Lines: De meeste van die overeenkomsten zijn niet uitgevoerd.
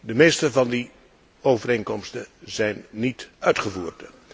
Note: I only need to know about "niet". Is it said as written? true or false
true